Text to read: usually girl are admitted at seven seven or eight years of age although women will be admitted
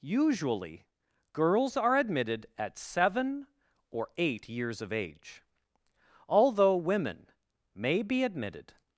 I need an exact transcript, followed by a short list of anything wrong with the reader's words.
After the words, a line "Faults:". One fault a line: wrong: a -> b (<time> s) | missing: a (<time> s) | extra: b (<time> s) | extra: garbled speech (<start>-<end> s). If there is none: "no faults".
usually girls are admitted at seven or eight years of age although women may be admitted
Faults:
wrong: girl -> girls (1.3 s)
missing: seven (3.5 s)
wrong: will -> may (7.7 s)